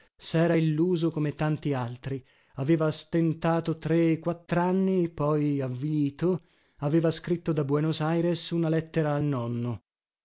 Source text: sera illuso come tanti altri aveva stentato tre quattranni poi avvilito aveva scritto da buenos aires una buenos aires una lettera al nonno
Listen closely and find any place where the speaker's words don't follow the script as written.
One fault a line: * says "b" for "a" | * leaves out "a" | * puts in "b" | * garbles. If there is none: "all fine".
* leaves out "buenos aires una"